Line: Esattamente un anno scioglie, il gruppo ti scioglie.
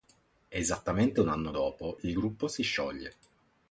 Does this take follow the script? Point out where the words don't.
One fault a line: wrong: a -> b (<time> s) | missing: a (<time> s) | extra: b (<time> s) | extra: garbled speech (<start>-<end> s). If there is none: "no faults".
wrong: scioglie -> dopo (1.5 s)
wrong: ti -> si (2.5 s)